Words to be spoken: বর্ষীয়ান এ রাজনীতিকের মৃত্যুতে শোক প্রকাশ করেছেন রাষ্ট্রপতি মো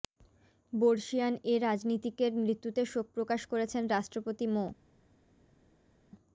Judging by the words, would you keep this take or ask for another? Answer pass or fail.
pass